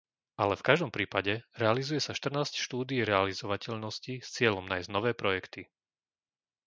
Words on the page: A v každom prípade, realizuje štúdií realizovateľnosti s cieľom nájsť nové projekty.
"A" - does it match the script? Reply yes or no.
no